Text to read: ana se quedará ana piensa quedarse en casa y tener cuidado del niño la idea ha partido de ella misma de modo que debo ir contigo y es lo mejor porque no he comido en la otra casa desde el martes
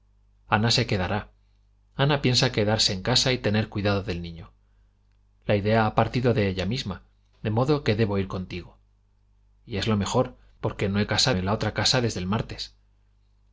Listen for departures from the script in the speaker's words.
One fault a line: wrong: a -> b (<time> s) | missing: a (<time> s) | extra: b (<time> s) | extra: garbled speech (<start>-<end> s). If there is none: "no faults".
wrong: comido -> casa (11.1 s)